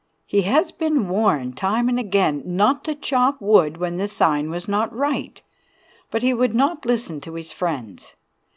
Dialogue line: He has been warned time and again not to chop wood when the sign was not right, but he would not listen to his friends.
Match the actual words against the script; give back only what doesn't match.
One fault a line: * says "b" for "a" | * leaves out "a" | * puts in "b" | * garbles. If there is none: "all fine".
all fine